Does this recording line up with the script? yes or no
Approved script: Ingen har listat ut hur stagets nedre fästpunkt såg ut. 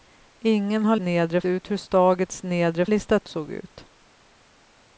no